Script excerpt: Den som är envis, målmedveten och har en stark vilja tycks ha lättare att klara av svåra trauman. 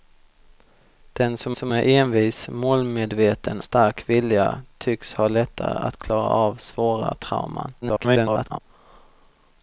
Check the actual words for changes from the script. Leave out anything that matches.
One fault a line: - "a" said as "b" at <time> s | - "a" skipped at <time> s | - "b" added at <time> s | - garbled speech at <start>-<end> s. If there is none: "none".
- "som" added at 1.5 s
- "och har en" skipped at 3.6 s
- garbled speech at 7.8-8.6 s